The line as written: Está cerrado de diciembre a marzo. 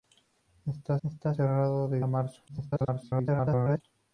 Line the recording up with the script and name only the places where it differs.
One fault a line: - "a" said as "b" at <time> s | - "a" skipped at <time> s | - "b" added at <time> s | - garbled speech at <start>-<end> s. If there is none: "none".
- "está" added at 1.0 s
- "diciembre" skipped at 2.0 s
- garbled speech at 2.5-3.8 s